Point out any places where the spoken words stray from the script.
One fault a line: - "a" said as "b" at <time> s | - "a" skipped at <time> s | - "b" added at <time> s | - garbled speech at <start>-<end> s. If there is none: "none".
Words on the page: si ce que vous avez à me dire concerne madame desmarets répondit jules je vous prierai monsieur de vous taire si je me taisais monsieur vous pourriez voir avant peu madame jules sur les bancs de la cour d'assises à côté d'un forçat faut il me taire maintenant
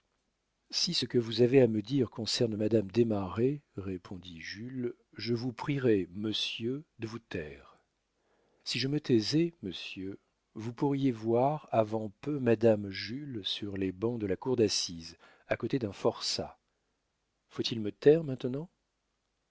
none